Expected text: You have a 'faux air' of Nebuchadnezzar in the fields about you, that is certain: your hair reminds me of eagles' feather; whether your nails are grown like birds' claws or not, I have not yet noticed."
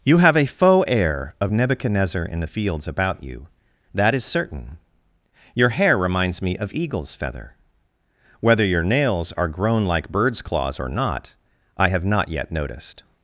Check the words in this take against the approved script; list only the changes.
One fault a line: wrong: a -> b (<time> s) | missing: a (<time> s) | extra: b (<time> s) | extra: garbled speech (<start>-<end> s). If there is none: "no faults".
no faults